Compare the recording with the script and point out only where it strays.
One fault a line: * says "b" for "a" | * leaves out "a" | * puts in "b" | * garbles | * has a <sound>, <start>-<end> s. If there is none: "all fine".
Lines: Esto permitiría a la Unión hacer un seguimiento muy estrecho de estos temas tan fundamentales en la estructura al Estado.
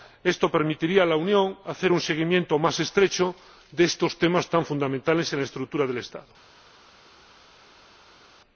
* says "más" for "muy"
* says "del" for "al"